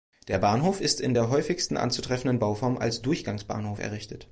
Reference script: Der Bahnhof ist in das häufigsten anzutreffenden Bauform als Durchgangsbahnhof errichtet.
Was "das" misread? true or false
true